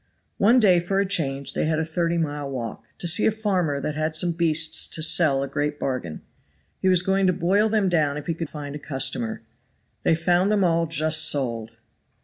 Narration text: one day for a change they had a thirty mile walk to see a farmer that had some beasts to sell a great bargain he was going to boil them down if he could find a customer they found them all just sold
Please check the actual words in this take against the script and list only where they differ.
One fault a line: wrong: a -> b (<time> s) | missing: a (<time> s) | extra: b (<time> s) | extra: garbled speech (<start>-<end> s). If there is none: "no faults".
no faults